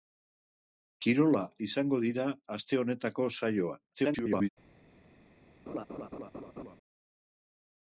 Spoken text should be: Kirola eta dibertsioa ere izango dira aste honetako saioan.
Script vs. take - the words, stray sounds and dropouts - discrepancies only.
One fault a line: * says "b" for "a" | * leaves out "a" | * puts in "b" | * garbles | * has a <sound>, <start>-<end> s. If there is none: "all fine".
* leaves out "eta dibertsioa ere"
* garbles
* has a laugh, 5.7-6.8 s